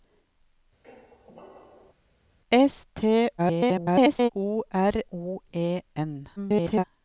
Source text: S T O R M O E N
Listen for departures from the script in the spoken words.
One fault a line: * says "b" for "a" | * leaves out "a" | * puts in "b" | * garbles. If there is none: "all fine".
* garbles
* leaves out "M"
* garbles